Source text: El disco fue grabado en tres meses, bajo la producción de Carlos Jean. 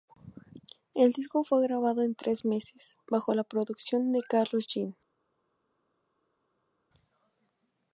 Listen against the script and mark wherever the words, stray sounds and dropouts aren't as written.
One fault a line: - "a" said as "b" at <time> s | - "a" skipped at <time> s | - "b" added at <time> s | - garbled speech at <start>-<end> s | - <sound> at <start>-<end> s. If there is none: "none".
none